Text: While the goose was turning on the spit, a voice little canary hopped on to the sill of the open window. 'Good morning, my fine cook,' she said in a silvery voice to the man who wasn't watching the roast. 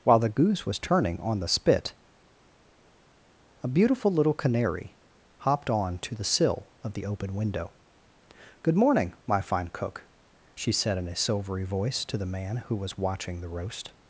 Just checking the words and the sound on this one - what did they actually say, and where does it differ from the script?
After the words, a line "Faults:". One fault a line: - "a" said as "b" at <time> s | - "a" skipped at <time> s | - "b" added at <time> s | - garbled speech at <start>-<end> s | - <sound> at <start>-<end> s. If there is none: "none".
While the goose was turning on the spit, a beautiful little canary hopped on to the sill of the open window. 'Good morning, my fine cook,' she said in a silvery voice to the man who was watching the roast.
Faults:
- "voice" said as "beautiful" at 3.7 s
- "wasn't" said as "was" at 12.8 s